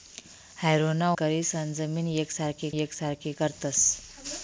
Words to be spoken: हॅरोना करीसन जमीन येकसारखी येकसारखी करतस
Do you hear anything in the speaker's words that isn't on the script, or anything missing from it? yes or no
no